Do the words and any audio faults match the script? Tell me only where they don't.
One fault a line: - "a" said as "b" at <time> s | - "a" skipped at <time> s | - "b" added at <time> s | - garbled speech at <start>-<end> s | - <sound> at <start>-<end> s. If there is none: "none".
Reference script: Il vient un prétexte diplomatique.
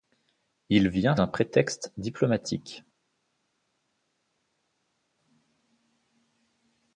none